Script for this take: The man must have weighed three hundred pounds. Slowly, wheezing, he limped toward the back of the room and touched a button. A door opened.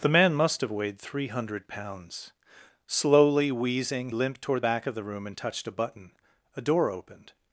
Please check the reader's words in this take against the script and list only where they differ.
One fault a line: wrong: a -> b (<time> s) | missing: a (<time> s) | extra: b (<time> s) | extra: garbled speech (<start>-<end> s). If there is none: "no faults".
missing: he (4.1 s)
missing: the (4.6 s)